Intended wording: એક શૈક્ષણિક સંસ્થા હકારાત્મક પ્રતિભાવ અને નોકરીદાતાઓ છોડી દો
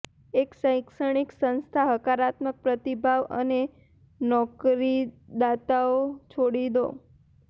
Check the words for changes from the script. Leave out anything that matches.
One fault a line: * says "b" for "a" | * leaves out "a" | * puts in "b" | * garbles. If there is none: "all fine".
all fine